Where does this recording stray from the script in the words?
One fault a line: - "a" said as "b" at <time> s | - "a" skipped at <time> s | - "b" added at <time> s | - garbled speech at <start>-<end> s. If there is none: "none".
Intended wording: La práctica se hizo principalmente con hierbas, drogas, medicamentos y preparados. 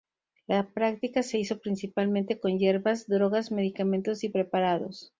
none